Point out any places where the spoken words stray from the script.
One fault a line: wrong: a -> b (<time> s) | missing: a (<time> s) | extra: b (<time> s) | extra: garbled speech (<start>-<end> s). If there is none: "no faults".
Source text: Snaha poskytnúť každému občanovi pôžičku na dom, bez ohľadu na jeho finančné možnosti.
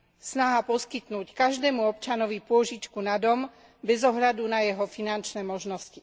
no faults